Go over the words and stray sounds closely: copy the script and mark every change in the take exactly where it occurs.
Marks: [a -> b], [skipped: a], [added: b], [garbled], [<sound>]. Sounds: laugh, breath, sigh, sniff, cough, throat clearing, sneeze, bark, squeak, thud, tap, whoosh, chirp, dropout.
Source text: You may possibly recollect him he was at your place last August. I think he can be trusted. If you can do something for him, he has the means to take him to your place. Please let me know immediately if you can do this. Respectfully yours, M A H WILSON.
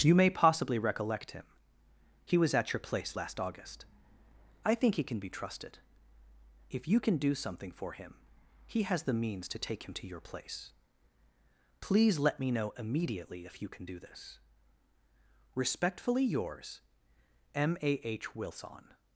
You may possibly recollect him he was at your place last August. I think he can be trusted. If you can do something for him, he has the means to take him to your place. Please let me know immediately if you can do this. Respectfully yours, M A H WILSON.